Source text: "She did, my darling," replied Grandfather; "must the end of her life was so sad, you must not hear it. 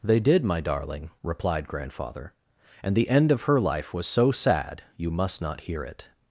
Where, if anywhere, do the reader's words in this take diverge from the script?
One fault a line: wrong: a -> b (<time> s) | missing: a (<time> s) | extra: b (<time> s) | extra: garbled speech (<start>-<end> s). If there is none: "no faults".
wrong: She -> They (0.0 s)
wrong: must -> and (2.8 s)